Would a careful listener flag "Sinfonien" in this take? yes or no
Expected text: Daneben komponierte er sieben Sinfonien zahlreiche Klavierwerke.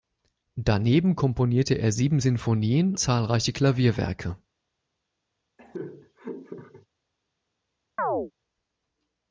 no